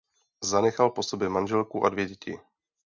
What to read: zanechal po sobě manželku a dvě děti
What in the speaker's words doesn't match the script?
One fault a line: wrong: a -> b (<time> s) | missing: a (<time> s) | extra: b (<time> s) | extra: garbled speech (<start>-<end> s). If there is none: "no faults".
no faults